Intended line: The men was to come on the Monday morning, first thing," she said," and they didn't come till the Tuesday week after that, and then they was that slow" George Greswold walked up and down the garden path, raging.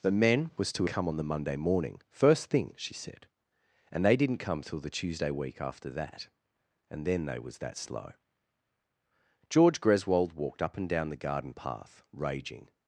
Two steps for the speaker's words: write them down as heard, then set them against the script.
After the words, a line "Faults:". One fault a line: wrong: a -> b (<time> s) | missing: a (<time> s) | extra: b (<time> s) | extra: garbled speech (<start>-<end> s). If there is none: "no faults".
The men was to come on the Monday morning, first thing," she said," and they didn't come till the Tuesday week after that, and then they was that slow" George Greswold walked up and down the garden path, raging.
Faults:
no faults